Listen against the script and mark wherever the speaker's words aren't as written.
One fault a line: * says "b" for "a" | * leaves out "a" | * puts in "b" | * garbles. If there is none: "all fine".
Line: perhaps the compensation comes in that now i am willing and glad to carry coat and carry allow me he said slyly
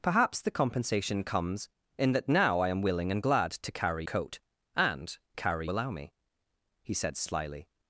all fine